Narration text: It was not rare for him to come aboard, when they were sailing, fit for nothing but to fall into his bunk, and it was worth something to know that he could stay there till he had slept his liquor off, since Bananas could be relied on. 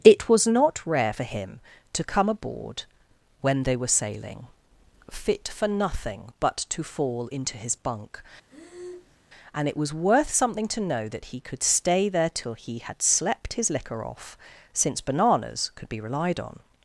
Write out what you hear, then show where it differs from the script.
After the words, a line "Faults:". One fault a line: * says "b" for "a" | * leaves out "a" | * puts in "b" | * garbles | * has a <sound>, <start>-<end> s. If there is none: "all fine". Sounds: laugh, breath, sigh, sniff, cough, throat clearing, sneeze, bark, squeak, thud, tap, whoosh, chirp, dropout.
It was not rare for him to come aboard, when they were sailing, fit for nothing but to fall into his bunk, and it was worth something to know that he could stay there till he had slept his liquor off, since Bananas could be relied on.
Faults:
* has a breath, 8.5-9.2 s